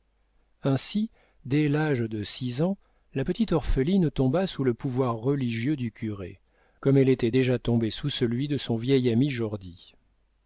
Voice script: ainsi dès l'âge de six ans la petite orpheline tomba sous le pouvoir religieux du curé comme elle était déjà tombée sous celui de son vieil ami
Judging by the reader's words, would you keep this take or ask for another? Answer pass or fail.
pass